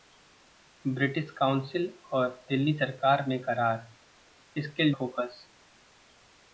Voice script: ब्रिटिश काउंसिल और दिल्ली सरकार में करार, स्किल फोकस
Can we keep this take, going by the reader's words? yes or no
yes